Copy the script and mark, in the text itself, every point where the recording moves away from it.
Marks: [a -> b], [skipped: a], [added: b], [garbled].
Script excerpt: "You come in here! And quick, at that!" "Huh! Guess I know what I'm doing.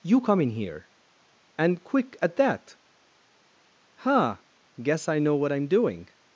"You come in here! And quick, at that!" "Huh! Guess I know what I'm doing.